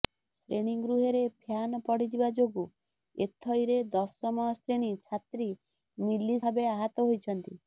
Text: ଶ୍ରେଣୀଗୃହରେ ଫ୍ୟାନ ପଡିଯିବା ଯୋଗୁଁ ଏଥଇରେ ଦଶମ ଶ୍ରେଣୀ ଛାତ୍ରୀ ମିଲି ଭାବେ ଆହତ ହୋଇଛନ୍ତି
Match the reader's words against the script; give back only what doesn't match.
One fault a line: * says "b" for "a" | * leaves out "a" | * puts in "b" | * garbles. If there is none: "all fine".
all fine